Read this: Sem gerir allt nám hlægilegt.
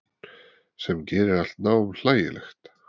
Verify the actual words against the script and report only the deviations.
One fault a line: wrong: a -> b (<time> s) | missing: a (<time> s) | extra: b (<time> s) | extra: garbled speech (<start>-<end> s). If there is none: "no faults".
no faults